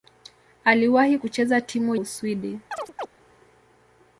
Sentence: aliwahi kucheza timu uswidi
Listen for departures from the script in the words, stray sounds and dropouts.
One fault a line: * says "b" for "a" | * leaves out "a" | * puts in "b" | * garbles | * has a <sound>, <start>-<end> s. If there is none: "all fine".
* has a chirp, 2.7-3.1 s